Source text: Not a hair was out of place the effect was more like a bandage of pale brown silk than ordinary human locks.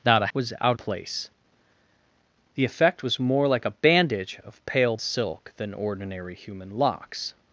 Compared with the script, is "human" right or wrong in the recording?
right